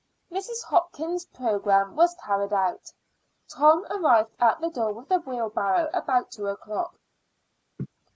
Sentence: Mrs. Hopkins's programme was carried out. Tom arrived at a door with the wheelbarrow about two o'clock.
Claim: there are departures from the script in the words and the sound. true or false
true